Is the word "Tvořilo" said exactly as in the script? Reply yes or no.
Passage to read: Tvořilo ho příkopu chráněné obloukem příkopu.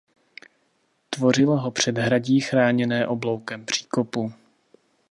yes